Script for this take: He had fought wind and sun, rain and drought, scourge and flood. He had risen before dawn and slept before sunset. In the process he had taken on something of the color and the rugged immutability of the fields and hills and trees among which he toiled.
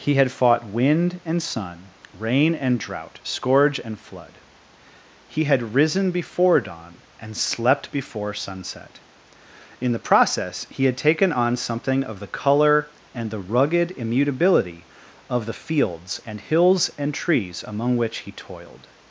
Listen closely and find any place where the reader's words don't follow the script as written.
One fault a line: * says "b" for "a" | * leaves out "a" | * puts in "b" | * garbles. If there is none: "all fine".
all fine